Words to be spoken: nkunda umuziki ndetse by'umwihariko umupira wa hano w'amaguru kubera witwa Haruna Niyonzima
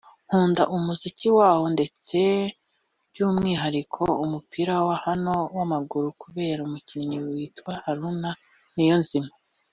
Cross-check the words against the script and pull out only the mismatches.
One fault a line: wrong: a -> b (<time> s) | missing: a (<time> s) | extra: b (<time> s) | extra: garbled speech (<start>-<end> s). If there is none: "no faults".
extra: waho (1.4 s)
extra: umukinnyi (6.7 s)